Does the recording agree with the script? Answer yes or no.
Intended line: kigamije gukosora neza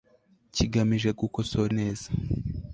yes